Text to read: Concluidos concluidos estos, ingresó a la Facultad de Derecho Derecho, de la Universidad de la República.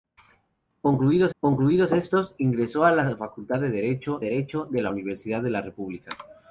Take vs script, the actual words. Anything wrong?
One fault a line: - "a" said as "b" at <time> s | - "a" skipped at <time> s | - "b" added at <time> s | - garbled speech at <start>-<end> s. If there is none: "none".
none